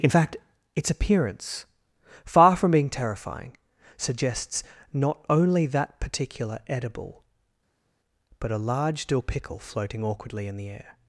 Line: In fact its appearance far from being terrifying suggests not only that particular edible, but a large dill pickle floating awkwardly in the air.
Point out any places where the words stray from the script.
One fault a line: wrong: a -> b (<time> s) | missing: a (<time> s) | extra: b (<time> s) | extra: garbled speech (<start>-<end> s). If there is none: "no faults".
no faults